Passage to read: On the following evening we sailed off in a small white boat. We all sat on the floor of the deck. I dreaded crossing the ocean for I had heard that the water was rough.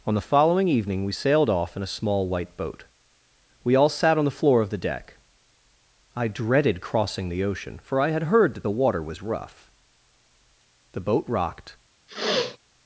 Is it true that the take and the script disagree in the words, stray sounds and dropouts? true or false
true